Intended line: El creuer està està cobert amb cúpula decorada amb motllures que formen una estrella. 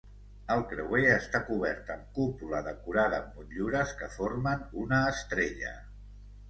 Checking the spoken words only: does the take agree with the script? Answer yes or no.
no